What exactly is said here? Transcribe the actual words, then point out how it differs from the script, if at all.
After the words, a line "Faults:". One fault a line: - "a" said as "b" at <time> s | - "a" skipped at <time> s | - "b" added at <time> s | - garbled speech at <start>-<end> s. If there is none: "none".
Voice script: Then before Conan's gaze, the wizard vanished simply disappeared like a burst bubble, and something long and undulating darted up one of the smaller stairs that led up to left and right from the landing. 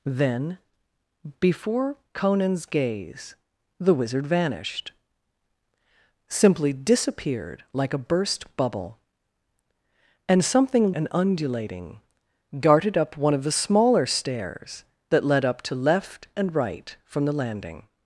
Then before Conan's gaze, the wizard vanished simply disappeared like a burst bubble, and something and undulating darted up one of the smaller stairs that led up to left and right from the landing.
Faults:
- "long" skipped at 10.9 s